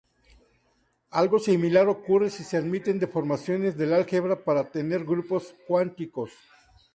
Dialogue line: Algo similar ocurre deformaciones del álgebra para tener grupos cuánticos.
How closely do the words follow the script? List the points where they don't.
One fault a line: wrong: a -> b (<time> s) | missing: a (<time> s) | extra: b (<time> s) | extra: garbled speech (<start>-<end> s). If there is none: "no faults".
extra: si se admiten (2.3 s)